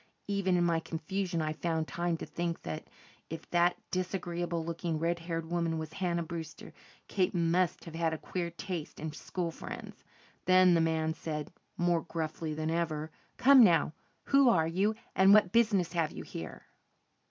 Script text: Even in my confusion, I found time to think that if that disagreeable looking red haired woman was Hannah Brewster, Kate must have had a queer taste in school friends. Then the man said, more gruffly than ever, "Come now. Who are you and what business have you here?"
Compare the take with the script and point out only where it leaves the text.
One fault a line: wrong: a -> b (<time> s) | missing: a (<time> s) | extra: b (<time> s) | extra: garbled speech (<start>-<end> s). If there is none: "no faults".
no faults